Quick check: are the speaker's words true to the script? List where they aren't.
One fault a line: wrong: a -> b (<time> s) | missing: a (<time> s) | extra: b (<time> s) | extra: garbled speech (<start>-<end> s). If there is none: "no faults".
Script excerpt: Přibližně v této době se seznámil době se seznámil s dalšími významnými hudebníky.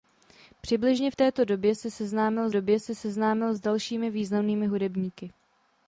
no faults